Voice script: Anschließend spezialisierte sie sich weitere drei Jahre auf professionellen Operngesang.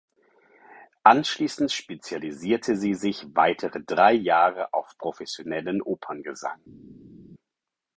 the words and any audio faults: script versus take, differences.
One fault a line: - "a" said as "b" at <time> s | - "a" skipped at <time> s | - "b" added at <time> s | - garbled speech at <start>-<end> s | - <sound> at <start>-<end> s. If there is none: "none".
none